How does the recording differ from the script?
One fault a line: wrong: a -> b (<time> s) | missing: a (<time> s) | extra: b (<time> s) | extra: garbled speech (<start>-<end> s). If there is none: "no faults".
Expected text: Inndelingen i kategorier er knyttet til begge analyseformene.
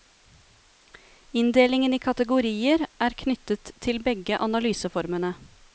no faults